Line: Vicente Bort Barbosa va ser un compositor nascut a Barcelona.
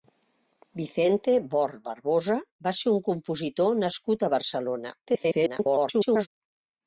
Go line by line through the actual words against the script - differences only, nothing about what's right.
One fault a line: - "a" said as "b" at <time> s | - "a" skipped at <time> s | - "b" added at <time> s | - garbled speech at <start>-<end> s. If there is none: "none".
- garbled speech at 5.1-6.3 s